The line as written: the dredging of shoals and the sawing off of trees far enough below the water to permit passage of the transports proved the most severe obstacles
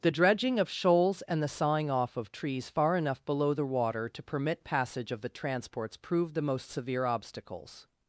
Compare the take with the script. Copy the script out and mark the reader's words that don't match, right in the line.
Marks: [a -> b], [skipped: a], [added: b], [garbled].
the dredging of shoals and the sawing off of trees far enough below the water to permit passage of the transports proved the most severe obstacles